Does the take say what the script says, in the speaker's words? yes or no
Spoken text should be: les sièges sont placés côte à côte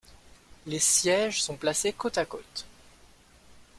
yes